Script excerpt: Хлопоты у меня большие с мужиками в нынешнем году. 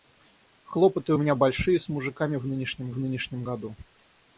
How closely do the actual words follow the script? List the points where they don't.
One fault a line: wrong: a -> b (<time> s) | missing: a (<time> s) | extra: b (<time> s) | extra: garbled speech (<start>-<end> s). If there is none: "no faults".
extra: в нынешнем (2.9 s)